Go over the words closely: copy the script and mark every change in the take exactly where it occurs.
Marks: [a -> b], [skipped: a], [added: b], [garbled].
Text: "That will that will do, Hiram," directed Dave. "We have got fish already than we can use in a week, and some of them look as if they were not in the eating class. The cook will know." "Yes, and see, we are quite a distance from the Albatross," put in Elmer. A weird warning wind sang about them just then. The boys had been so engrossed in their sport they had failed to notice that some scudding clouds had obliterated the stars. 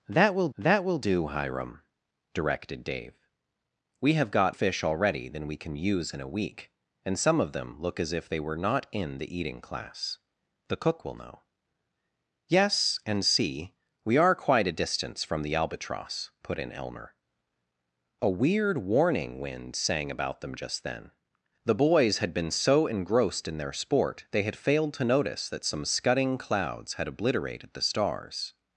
"That will that will do, Hiram," directed Dave. "We have got fish already than we can use in a week, and some of them look as if they were not in the eating class. The cook will know." "Yes, and see, we are quite a distance from the Albatross," put in Elmer. A weird warning wind sang about them just then. The boys had been so engrossed in their sport they had failed to notice that some scudding clouds had obliterated the stars.